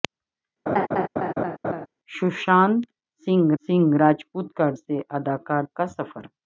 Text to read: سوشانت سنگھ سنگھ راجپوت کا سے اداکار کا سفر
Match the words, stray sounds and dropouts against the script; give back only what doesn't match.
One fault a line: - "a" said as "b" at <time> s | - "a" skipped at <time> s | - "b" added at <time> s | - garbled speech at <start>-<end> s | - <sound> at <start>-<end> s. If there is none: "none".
- laugh at 0.7-1.9 s